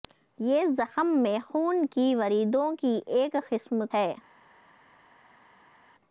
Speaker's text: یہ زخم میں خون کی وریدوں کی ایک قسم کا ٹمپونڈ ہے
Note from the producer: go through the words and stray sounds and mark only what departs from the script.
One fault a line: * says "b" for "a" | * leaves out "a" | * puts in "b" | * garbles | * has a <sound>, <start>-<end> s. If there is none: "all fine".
* leaves out "کا ٹمپونڈ"